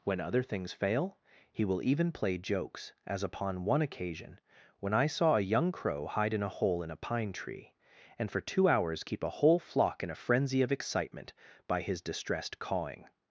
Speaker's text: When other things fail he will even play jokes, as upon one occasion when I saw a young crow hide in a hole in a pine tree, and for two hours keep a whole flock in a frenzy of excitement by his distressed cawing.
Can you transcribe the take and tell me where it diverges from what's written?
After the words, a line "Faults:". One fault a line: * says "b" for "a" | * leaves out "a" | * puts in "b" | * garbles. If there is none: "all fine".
When other things fail he will even play jokes, as upon one occasion when I saw a young crow hide in a hole in a pine tree, and for two hours keep a whole flock in a frenzy of excitement by his distressed cawing.
Faults:
all fine